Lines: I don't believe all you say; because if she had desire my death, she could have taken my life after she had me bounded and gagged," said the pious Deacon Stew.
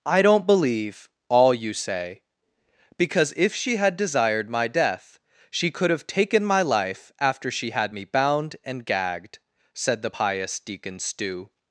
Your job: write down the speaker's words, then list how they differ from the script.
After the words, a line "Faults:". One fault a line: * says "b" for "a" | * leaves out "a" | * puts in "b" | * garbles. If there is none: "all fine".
I don't believe all you say; because if she had desired my death, she could have taken my life after she had me bound and gagged," said the pious Deacon Stew.
Faults:
* says "desired" for "desire"
* says "bound" for "bounded"